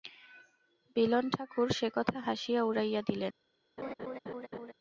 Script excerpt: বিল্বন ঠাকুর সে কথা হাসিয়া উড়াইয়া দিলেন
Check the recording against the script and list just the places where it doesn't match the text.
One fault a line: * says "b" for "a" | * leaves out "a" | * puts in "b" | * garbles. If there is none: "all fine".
all fine